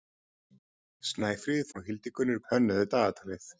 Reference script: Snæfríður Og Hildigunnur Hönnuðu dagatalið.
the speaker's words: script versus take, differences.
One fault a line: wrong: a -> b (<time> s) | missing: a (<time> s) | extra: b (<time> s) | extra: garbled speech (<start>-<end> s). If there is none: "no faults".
no faults